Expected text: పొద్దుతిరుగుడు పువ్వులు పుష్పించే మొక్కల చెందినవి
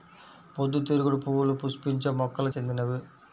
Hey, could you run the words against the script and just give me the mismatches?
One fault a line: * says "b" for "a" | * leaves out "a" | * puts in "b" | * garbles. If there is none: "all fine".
all fine